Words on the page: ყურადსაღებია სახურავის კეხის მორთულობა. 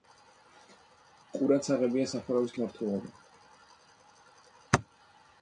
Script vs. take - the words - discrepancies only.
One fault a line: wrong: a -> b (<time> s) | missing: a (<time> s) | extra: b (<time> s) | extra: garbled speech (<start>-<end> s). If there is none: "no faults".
missing: კეხის (2.5 s)